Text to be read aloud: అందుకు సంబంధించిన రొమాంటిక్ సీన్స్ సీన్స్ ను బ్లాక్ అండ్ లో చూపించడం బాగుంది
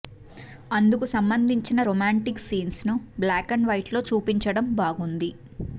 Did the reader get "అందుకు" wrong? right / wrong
right